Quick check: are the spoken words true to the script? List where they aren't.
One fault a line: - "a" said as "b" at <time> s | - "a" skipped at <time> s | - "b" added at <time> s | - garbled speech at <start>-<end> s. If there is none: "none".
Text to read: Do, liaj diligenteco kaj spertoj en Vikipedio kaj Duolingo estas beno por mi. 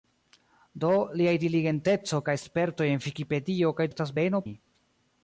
- "Duolingo" skipped at 3.9 s
- "por" skipped at 4.5 s